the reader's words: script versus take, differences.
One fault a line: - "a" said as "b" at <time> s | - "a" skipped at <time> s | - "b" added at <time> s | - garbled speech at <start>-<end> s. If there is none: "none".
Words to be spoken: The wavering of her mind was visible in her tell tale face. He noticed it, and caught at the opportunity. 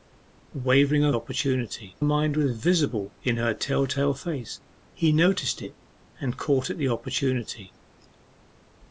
- "her" said as "opportunity" at 1.1 s